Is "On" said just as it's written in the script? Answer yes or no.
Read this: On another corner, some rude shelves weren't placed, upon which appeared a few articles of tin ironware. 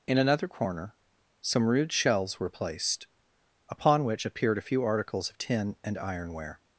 no